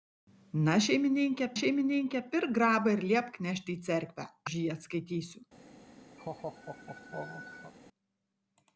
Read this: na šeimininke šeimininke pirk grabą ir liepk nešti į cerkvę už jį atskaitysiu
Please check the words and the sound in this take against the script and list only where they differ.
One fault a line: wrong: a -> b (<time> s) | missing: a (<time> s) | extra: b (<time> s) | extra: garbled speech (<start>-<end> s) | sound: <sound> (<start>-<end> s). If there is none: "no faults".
sound: laugh (6.2-7.7 s)